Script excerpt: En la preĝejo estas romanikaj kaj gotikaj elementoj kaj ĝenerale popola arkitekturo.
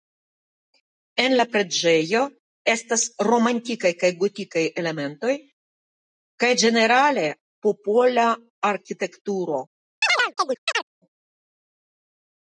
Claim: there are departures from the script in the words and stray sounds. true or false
true